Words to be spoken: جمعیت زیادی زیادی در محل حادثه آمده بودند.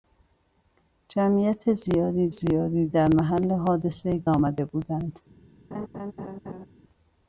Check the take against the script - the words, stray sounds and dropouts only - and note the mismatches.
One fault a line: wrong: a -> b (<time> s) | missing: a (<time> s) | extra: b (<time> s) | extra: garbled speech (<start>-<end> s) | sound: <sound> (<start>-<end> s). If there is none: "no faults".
sound: laugh (5.7-6.7 s)